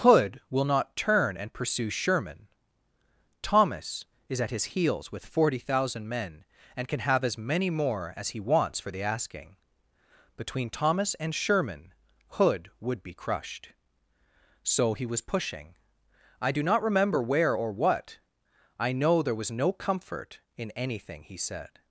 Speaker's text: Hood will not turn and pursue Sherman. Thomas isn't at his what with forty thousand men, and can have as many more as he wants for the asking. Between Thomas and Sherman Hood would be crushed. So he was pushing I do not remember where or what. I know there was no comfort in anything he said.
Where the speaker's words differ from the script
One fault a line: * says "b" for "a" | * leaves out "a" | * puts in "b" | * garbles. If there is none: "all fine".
* says "is" for "isn't"
* says "heels" for "what"